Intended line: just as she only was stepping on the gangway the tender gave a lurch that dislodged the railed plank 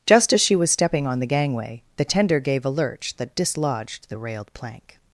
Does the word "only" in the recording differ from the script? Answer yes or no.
yes